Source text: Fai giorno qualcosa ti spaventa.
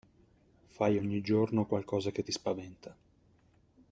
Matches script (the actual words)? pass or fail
fail